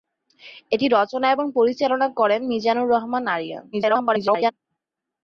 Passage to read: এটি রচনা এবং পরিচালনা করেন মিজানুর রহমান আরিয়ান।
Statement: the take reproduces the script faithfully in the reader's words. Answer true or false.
false